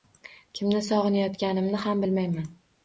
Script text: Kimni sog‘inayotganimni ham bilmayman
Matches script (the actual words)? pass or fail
pass